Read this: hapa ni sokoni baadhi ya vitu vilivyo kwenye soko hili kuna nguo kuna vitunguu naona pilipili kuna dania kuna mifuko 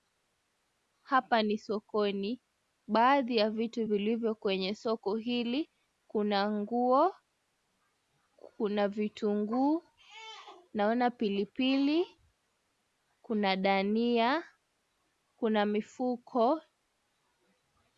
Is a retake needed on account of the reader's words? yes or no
no